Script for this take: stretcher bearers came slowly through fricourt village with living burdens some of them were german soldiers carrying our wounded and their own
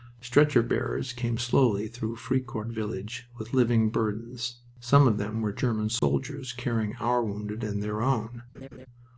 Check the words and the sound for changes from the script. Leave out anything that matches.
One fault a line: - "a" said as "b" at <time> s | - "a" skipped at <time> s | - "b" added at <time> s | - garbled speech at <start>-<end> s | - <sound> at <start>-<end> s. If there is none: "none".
- dropout at 6.0-6.0 s
- laugh at 8.5-8.9 s